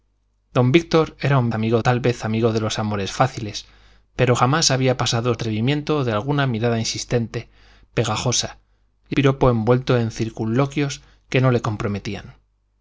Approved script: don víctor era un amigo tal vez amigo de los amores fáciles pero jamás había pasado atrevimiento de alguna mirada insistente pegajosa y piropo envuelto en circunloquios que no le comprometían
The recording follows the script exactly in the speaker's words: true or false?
true